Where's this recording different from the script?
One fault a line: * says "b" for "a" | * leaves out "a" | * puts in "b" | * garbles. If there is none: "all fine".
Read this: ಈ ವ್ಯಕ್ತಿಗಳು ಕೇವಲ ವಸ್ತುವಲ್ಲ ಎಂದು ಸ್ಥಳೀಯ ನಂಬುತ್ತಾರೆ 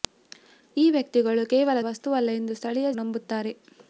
all fine